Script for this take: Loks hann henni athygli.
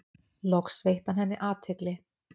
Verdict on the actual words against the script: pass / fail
fail